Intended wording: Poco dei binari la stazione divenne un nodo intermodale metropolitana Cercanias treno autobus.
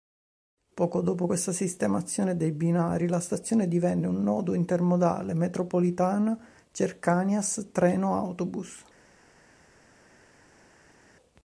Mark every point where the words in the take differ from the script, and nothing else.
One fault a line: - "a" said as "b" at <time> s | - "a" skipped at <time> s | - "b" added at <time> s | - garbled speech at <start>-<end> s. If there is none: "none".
- "dopo questa sistemazione" added at 1.0 s